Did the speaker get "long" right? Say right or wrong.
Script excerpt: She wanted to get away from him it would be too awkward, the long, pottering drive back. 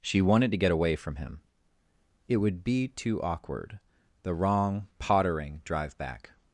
wrong